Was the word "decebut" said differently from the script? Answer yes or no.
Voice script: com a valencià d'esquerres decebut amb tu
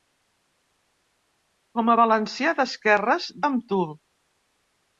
yes